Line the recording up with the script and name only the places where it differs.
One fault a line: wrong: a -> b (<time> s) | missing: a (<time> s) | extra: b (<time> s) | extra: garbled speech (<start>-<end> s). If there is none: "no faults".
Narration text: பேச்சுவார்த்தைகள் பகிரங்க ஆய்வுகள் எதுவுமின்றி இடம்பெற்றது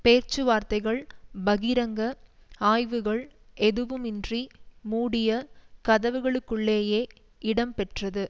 extra: மூடிய கதவுகளுக்குள்ளேயே (4.8 s)